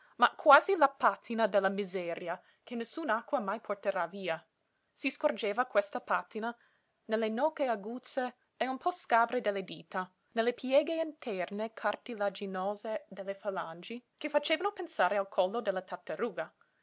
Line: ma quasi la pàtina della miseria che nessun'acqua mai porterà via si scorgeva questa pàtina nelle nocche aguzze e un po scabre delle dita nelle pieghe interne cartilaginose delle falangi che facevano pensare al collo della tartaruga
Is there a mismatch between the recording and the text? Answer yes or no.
no